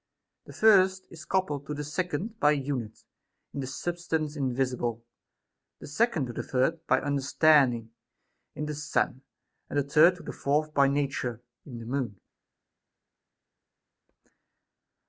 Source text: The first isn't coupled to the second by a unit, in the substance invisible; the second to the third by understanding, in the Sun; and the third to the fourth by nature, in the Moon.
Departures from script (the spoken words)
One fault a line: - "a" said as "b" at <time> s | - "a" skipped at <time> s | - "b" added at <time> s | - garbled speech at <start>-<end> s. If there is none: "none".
- "isn't" said as "is" at 1.1 s